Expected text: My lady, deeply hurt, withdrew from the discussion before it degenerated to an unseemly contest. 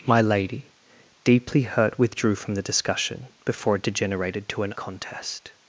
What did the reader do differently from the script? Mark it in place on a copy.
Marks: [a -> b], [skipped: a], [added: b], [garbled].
My lady, deeply hurt, withdrew from the discussion before it degenerated to an [skipped: unseemly] contest.